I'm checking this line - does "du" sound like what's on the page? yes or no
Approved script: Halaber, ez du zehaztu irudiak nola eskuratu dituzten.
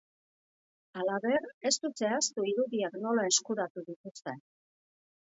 yes